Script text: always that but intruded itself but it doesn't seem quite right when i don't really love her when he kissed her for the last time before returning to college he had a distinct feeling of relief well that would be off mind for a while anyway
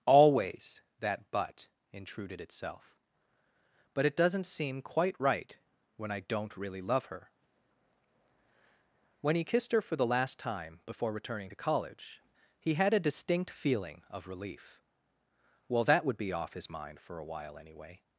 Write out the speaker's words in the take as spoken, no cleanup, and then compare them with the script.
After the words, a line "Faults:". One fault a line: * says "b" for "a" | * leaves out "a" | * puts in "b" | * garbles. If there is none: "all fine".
always that but intruded itself but it doesn't seem quite right when i don't really love her when he kissed her for the last time before returning to college he had a distinct feeling of relief well that would be off his mind for a while anyway
Faults:
* puts in "his"